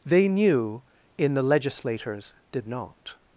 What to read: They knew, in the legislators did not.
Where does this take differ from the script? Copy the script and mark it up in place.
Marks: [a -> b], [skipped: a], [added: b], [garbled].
They knew, in the legislators did not.